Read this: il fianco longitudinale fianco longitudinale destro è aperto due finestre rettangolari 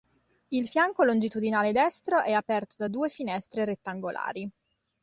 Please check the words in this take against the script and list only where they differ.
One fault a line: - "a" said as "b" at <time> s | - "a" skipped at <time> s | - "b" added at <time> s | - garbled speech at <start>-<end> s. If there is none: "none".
- "fianco longitudinale" skipped at 1.7 s
- "da" added at 2.8 s